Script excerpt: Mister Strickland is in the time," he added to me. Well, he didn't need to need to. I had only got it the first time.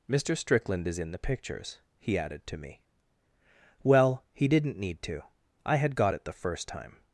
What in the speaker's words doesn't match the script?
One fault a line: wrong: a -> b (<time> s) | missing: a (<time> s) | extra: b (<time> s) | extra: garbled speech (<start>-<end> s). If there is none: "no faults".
wrong: time -> pictures (1.2 s)
missing: need to (5.2 s)
missing: only (6.0 s)